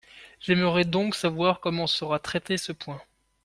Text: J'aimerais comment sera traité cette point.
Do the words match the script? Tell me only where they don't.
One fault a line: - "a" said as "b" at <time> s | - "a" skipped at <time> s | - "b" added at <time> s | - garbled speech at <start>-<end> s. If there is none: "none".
- "donc savoir" added at 0.8 s
- "cette" said as "ce" at 2.6 s